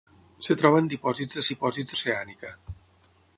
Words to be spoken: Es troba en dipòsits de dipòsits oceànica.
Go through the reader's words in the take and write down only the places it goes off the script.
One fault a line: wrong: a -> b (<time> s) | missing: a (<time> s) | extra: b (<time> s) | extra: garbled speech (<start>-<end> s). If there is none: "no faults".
no faults